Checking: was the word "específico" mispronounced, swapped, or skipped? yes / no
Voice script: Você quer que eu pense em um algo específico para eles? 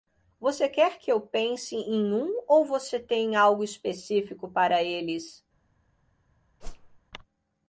no